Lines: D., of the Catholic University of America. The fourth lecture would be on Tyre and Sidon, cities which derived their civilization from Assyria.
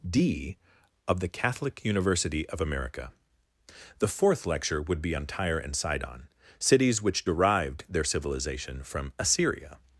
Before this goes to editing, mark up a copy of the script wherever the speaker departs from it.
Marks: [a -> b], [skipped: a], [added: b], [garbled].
D., of the Catholic University of America. The fourth lecture would be on Tyre and Sidon, cities which derived their civilization from Assyria.